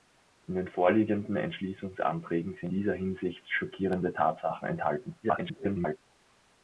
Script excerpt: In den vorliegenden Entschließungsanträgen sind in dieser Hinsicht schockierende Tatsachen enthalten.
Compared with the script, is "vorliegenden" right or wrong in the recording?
right